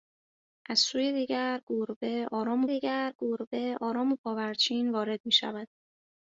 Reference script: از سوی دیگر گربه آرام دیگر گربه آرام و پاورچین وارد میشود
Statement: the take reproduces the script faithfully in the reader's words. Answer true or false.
true